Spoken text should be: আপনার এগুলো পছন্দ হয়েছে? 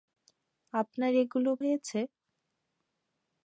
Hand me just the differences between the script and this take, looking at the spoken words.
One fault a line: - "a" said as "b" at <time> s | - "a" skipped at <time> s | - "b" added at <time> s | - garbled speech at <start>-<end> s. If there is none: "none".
- "পছন্দ" skipped at 1.5 s